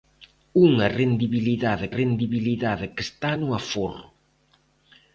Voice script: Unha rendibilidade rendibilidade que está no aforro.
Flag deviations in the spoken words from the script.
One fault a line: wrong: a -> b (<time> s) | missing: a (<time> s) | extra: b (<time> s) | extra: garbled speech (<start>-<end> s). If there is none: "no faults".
no faults